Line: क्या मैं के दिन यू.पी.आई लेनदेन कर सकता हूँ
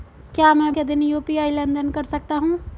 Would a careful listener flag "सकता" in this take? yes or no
no